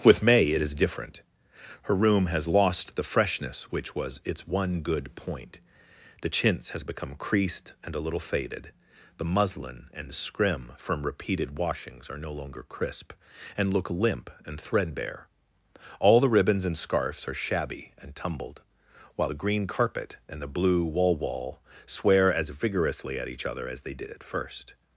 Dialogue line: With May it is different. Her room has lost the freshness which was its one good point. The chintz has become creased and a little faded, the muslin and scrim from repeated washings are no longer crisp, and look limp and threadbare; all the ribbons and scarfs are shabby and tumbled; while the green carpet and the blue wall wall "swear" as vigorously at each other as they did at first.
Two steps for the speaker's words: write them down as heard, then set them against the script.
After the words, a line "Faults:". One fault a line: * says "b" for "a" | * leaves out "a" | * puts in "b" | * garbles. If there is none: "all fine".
With May it is different. Her room has lost the freshness which was its one good point. The chintz has become creased and a little faded, the muslin and scrim from repeated washings are no longer crisp, and look limp and threadbare; all the ribbons and scarfs are shabby and tumbled; while the green carpet and the blue wall wall "swear" as vigorously at each other as they did at first.
Faults:
all fine